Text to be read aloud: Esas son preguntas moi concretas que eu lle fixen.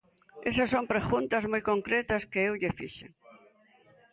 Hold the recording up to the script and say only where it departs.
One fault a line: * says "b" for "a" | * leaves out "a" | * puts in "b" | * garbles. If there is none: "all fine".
all fine